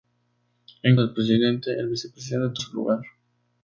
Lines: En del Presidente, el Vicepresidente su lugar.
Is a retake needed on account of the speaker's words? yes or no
no